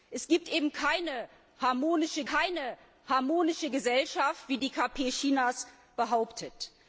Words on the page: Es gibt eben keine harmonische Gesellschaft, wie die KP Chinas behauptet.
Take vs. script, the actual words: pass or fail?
fail